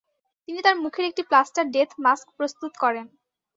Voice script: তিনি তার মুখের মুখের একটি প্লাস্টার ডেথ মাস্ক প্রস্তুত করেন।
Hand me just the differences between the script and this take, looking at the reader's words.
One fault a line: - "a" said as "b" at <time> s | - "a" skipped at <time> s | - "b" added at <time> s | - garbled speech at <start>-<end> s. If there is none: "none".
- "মুখের" skipped at 1.1 s